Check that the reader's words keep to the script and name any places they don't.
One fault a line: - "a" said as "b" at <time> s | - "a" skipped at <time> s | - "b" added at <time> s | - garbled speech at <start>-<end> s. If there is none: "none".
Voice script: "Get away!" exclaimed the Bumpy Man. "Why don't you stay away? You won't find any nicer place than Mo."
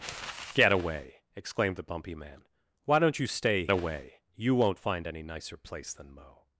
none